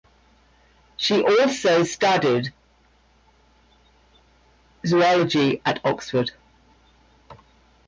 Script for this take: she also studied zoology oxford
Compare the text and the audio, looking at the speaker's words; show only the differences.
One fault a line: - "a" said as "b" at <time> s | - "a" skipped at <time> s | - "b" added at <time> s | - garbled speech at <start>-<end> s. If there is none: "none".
- "at" added at 5.6 s